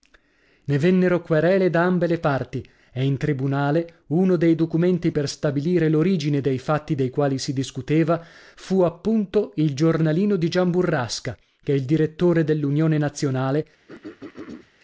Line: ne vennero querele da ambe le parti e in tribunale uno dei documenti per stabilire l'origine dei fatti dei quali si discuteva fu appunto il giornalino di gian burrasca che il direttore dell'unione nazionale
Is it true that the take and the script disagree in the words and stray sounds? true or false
true